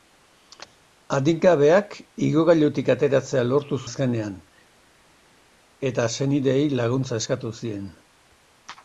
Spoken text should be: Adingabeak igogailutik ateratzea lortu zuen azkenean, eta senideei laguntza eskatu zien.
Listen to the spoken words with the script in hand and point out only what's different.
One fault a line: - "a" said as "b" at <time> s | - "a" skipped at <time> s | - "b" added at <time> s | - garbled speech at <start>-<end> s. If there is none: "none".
- "zuen" skipped at 3.8 s